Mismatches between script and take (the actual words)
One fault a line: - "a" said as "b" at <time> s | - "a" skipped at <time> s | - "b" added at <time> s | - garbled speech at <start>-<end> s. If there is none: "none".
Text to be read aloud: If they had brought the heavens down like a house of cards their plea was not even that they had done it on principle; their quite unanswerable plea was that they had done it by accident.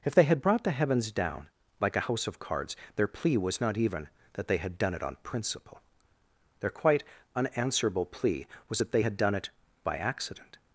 none